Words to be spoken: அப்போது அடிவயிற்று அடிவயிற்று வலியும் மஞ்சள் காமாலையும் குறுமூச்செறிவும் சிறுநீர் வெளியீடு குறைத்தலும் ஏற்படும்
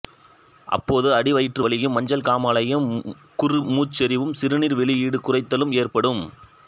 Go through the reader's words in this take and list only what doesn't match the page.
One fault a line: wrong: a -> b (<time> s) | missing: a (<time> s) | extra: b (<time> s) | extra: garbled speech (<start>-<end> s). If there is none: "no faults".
missing: அடிவயிற்று (1.6 s)